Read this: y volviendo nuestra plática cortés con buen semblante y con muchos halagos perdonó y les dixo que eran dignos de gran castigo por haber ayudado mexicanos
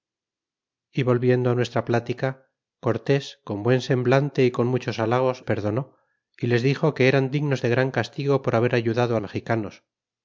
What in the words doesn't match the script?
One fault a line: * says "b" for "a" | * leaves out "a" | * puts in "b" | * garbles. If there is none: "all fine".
all fine